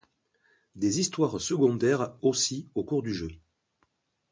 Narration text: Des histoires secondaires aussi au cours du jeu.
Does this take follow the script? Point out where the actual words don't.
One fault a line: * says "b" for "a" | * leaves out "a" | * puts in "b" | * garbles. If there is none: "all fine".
all fine